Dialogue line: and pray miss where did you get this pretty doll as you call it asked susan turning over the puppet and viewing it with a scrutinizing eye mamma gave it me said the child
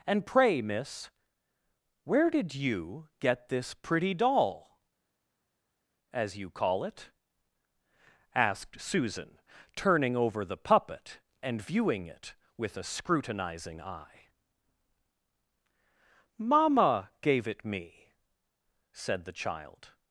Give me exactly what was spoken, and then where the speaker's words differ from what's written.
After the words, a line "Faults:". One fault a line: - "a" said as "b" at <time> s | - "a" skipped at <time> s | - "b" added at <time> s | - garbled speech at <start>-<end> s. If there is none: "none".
and pray miss where did you get this pretty doll as you call it asked susan turning over the puppet and viewing it with a scrutinizing eye mamma gave it me said the child
Faults:
none